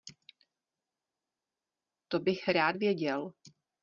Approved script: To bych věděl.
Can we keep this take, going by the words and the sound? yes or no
no